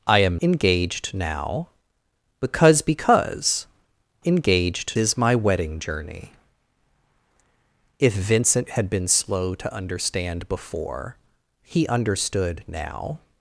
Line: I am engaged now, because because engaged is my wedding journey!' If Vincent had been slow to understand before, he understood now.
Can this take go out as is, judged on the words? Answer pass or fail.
pass